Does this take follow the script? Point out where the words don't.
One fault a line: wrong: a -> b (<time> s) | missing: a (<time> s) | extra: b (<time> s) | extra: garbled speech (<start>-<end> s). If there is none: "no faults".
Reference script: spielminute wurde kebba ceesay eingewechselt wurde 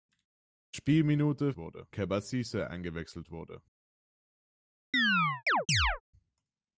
no faults